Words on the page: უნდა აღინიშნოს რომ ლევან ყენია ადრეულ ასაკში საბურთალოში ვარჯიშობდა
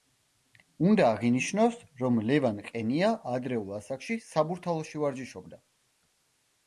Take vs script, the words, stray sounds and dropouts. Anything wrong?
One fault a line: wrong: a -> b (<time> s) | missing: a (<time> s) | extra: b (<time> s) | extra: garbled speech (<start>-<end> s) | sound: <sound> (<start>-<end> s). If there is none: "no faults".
no faults